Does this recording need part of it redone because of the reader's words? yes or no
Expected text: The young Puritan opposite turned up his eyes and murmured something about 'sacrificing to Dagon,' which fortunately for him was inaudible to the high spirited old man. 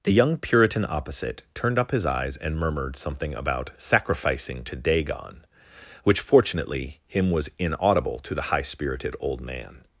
yes